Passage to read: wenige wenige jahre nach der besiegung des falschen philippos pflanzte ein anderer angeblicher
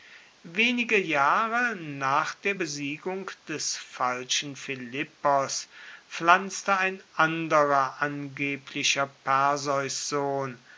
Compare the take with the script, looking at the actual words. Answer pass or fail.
fail